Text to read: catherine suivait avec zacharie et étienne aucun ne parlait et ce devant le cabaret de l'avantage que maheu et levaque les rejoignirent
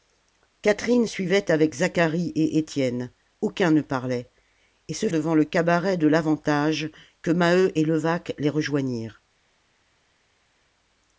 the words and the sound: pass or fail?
pass